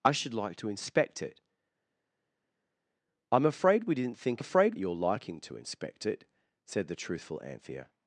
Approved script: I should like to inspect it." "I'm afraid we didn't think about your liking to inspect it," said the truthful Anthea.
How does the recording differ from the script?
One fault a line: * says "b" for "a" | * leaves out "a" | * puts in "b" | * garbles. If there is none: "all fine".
* says "afraid" for "about"